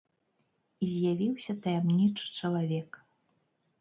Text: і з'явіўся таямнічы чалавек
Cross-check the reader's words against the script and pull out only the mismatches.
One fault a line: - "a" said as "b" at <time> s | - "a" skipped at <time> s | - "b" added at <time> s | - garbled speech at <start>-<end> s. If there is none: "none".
none